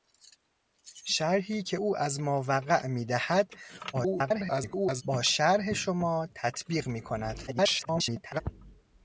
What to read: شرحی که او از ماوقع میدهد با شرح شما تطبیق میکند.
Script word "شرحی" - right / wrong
right